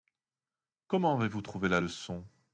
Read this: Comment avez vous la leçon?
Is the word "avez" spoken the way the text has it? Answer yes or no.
yes